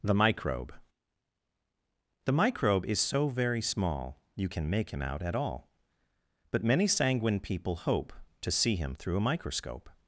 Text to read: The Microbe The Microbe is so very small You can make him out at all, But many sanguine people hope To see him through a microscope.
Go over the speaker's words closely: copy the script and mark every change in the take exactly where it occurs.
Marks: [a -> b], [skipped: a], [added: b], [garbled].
The Microbe The Microbe is so very small You can make him out at all, But many sanguine people hope To see him through a microscope.